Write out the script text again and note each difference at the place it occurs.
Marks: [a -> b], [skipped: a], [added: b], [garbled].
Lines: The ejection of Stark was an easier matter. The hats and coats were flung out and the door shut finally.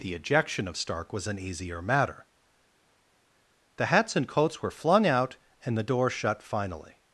The ejection of Stark was an easier matter. The hats and coats were flung out and the door shut finally.